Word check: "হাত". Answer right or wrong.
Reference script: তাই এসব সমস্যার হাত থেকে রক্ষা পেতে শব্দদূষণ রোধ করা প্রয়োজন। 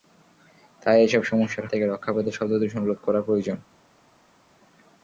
wrong